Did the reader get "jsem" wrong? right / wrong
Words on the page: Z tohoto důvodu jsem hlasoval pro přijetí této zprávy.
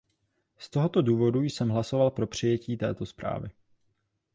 right